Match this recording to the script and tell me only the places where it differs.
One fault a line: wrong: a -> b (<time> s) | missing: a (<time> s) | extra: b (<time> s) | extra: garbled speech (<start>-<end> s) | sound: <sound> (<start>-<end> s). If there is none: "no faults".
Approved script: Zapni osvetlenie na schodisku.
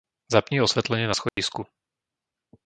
sound: dropout (1.3-1.4 s)